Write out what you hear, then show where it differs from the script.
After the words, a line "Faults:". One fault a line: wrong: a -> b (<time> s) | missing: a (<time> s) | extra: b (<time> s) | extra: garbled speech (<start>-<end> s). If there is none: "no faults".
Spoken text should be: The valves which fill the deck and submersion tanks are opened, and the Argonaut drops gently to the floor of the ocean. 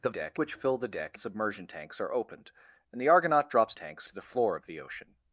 The deck which fill the deck submersion tanks are opened, and the Argonaut drops tanks to the floor of the ocean.
Faults:
wrong: valves -> deck (0.1 s)
missing: and (1.2 s)
wrong: gently -> tanks (3.7 s)